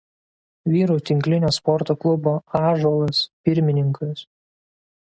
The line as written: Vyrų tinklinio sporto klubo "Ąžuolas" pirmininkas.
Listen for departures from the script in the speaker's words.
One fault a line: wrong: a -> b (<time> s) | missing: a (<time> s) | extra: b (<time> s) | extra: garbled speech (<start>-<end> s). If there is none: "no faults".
no faults